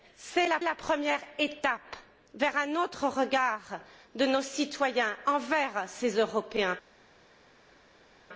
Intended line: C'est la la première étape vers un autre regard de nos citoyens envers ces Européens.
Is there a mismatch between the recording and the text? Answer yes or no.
no